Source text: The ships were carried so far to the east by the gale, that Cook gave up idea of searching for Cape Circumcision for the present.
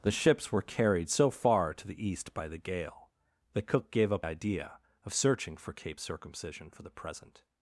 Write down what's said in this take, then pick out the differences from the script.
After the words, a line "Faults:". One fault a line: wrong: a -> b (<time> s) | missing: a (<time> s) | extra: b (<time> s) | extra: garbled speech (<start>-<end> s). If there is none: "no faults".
The ships were carried so far to the east by the gale, that Cook gave up idea of searching for Cape Circumcision for the present.
Faults:
no faults